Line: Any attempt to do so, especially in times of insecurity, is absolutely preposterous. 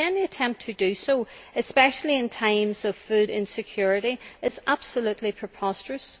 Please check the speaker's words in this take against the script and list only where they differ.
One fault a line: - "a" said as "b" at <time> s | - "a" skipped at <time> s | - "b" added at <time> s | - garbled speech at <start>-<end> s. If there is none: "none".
- "food" added at 3.0 s